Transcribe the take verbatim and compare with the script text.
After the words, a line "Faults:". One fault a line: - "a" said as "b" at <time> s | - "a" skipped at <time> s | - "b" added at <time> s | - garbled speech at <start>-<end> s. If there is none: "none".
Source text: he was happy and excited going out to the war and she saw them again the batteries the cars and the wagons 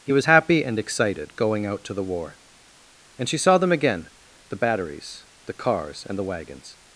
he was happy and excited going out to the war and she saw them again the batteries the cars and the wagons
Faults:
none